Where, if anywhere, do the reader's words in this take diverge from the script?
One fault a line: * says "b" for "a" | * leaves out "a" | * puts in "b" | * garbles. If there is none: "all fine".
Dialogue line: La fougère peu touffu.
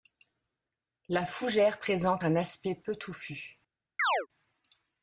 * puts in "présente un aspect"